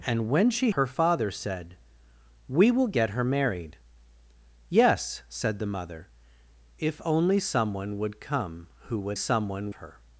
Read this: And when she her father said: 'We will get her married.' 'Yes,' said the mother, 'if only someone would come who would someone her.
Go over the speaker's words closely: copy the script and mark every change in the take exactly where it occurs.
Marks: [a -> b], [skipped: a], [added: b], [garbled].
And when she her father said: 'We will get her married.' 'Yes,' said the mother, 'if only someone would come who would someone her.